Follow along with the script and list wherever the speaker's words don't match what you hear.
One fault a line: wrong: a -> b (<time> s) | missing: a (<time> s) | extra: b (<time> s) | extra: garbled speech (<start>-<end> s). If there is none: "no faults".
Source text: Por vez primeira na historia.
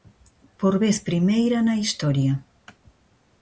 no faults